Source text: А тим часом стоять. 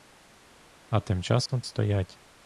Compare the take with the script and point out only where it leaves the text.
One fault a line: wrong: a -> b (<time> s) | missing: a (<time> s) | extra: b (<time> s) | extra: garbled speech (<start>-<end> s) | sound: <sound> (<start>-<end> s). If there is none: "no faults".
sound: dropout (1.5-1.5 s)